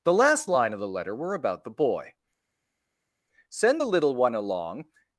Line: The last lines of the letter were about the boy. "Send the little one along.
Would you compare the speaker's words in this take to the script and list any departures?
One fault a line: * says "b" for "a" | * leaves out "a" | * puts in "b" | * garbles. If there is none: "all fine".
* says "line" for "lines"